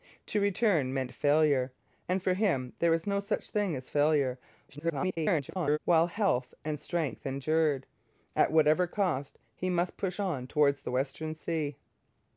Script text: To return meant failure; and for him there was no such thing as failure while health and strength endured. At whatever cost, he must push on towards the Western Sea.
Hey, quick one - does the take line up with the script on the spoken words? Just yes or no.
no